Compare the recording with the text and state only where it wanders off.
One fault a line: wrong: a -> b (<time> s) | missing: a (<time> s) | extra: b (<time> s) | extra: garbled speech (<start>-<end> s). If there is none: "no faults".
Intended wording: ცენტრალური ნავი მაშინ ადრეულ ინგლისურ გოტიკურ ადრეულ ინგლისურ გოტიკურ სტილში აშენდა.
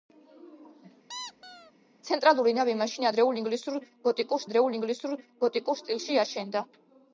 no faults